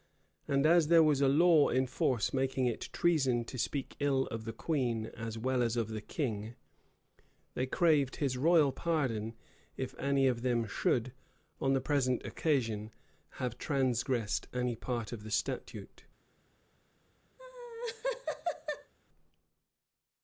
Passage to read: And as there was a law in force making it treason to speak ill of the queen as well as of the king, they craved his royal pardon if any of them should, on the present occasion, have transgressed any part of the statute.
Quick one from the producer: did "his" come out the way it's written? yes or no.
yes